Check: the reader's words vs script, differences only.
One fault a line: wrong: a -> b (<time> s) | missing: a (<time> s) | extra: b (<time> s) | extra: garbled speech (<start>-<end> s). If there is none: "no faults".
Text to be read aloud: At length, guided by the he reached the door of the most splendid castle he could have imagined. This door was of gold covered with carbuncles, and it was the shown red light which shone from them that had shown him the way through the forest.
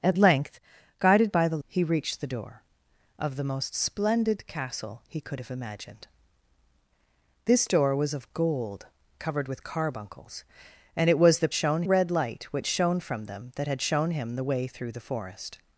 no faults